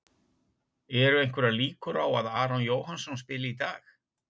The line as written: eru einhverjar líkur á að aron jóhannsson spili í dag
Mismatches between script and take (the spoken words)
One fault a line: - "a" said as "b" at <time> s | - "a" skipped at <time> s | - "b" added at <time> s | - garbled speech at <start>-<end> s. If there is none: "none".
none